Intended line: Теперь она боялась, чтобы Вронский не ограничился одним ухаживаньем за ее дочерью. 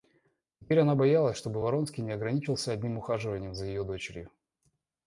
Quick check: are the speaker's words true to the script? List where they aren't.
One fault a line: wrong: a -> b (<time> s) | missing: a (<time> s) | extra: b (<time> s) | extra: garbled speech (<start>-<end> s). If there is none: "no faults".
no faults